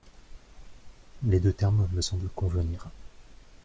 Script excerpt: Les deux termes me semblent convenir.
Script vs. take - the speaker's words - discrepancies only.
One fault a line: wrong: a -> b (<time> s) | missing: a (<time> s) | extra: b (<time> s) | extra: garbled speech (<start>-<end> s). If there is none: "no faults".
no faults